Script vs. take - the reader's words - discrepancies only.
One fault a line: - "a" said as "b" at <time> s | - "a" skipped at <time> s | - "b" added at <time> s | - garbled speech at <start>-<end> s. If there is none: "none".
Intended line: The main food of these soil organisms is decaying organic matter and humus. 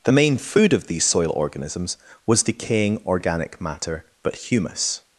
- "is" said as "was" at 2.3 s
- "and" said as "but" at 4.2 s